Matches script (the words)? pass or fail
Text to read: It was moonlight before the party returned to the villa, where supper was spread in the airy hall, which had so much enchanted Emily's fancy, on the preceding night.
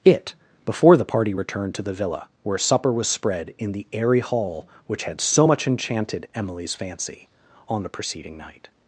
fail